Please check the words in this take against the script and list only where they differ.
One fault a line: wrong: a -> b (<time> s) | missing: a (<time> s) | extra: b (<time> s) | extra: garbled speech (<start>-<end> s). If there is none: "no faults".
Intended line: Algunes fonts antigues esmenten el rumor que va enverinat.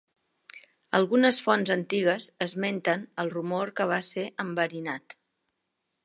extra: ser (4.1 s)